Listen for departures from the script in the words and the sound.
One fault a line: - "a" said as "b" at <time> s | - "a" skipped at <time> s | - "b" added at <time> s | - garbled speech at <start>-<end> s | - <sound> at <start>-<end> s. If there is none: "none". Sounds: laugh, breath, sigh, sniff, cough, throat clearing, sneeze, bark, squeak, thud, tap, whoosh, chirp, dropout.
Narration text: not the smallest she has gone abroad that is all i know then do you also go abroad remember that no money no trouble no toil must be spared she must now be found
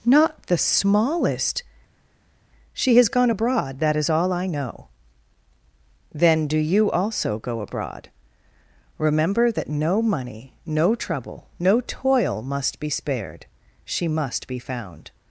- "now" skipped at 14.5 s